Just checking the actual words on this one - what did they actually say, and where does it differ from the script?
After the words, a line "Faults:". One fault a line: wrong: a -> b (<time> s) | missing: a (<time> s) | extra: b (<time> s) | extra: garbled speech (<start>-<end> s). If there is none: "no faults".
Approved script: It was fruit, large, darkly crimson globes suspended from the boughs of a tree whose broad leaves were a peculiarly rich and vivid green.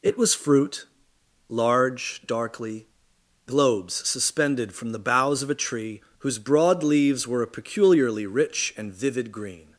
It was fruit, large, darkly globes suspended from the boughs of a tree whose broad leaves were a peculiarly rich and vivid green.
Faults:
missing: crimson (2.9 s)